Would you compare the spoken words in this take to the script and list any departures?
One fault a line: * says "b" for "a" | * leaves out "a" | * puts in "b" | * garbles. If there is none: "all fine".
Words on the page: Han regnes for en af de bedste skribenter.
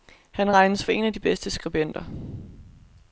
all fine